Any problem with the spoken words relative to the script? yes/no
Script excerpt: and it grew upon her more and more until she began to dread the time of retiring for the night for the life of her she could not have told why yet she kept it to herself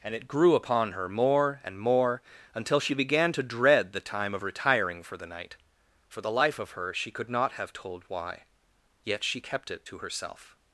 no